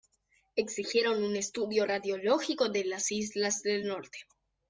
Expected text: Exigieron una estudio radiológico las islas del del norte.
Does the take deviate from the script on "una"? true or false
true